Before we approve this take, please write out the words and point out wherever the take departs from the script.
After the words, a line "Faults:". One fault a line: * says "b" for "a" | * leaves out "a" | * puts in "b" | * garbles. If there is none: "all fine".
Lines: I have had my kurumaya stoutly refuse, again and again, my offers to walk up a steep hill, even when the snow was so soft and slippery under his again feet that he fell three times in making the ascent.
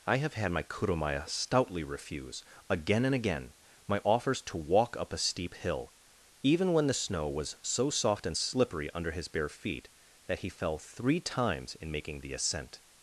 I have had my kurumaya stoutly refuse, again and again, my offers to walk up a steep hill, even when the snow was so soft and slippery under his bare feet that he fell three times in making the ascent.
Faults:
* says "bare" for "again"